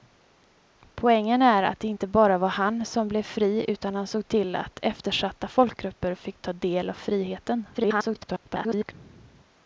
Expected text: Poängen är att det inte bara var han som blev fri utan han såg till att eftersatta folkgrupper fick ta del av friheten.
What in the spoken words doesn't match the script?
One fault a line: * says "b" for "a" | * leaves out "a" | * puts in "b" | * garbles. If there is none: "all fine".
* garbles